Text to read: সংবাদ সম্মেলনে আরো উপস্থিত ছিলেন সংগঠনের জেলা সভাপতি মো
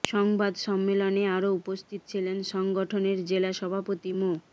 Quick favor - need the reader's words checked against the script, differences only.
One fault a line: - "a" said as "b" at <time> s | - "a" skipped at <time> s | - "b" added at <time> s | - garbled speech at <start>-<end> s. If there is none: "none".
none